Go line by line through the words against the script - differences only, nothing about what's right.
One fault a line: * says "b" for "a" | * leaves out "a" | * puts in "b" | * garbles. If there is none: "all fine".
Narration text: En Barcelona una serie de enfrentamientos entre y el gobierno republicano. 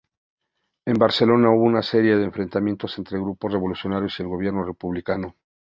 * puts in "hubo"
* puts in "grupos revolucionarios"